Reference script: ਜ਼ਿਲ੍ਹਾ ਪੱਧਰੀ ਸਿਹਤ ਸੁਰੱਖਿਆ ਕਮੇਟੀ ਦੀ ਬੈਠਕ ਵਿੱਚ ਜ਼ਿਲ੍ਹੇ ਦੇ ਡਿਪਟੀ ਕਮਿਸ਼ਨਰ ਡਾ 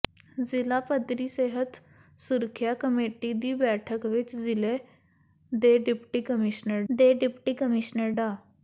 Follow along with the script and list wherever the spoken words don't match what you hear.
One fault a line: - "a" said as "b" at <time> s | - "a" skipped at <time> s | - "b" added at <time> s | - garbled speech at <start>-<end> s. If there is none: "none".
- "ਦੇ ਡਿਪਟੀ ਕਮਿਸ਼ਨਰ" added at 6.9 s